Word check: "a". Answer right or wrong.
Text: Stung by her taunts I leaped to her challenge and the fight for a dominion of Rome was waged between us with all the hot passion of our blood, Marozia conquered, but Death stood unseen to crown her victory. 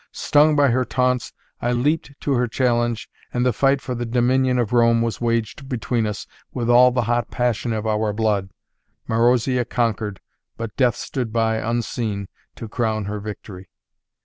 wrong